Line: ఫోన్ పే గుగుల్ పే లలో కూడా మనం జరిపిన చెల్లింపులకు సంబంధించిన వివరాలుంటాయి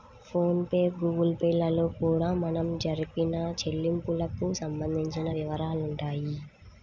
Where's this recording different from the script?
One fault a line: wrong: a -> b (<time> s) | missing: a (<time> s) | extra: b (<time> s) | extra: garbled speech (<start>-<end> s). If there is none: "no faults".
no faults